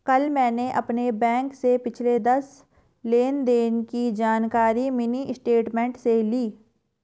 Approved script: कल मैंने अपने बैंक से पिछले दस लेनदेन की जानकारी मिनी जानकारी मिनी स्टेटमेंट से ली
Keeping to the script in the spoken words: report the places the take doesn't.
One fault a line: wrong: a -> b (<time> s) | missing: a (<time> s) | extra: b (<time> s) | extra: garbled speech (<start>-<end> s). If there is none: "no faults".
missing: जानकारी मिनी (5.3 s)